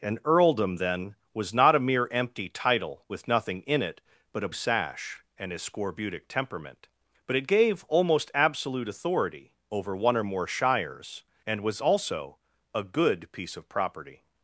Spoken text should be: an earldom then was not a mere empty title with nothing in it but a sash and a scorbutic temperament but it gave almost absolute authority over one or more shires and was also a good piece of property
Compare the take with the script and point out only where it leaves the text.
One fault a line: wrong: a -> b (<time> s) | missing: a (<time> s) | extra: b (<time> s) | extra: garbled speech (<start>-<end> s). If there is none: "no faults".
no faults